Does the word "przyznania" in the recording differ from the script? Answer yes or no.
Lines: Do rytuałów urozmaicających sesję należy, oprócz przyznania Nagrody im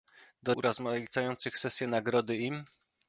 yes